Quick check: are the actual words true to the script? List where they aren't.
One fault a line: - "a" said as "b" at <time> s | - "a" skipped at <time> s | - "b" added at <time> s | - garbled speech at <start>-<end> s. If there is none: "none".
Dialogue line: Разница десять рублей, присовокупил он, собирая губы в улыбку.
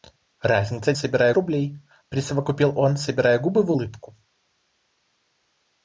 - "десять" said as "собирая" at 0.9 s